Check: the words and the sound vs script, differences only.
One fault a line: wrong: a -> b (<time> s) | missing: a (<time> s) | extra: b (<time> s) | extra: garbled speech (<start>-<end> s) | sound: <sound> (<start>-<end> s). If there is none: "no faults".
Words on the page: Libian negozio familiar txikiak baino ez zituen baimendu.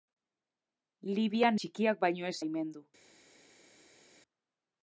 missing: negozio familiar (1.6 s)
missing: zituen (2.4 s)